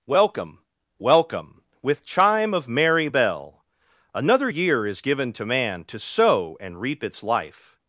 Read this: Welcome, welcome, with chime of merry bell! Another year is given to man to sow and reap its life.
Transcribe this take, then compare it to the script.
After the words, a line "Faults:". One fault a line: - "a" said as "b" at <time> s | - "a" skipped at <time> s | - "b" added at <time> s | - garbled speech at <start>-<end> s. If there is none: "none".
Welcome, welcome, with chime of merry bell! Another year is given to man to sow and reap its life.
Faults:
none